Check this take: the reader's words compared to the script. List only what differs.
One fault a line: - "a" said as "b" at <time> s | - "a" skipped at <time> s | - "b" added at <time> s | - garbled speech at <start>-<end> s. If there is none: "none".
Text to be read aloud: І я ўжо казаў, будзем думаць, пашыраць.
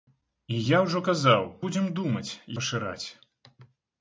none